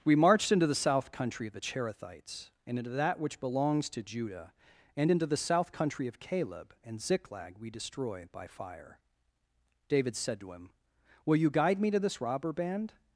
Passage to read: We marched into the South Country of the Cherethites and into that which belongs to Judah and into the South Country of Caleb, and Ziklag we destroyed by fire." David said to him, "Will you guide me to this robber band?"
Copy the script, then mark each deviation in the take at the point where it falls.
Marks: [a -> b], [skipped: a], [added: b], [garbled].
We marched into the South Country of the Cherethites and into that which belongs to Judah and into the South Country of Caleb, and Ziklag we [destroyed -> destroy] by fire." David said to him, "Will you guide me to this robber band?"